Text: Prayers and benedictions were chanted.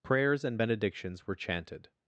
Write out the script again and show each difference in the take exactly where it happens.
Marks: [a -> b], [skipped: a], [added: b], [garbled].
Prayers and benedictions were chanted.